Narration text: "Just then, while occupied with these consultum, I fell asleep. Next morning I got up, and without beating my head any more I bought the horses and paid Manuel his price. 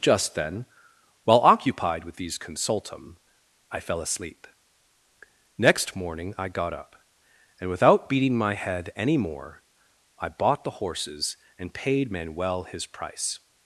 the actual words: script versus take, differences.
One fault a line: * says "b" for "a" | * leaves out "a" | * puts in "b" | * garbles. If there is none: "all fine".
all fine